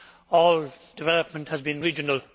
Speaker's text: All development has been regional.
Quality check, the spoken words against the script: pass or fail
pass